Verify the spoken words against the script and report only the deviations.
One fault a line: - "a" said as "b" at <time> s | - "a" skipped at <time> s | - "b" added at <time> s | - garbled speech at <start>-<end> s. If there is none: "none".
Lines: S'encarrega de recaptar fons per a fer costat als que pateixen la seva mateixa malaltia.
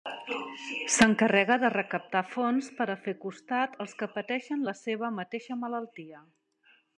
none